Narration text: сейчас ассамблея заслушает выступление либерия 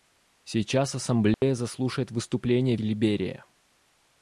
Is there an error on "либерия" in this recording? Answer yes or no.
no